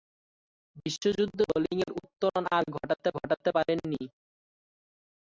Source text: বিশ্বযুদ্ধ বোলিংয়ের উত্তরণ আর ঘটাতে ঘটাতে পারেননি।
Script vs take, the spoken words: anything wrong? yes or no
no